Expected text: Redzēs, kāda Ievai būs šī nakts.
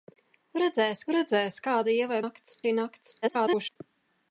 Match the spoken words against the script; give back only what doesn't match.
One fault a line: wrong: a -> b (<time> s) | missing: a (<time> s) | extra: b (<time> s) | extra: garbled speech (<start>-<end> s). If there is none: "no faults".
extra: redzēs (1.1 s)
wrong: būs -> nakts (2.2 s)
extra: garbled speech (3.2-3.8 s)